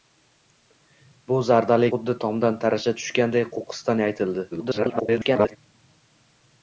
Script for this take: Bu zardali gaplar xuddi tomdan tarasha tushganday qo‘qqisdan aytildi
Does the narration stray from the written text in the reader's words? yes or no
yes